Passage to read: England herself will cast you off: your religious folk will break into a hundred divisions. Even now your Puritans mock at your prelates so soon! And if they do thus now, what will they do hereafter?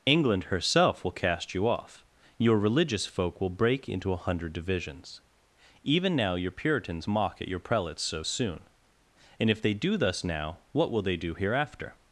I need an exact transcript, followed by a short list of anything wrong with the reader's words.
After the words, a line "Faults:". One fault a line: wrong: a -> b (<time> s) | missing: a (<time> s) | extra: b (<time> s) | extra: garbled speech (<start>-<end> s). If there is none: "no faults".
England herself will cast you off: your religious folk will break into a hundred divisions. Even now your Puritans mock at your prelates so soon! And if they do thus now, what will they do hereafter?
Faults:
no faults